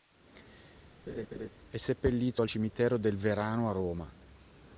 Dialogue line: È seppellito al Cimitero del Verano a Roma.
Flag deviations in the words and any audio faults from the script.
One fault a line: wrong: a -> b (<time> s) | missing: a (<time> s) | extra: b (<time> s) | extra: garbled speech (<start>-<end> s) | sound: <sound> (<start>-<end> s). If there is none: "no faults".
sound: laugh (1.1-1.5 s)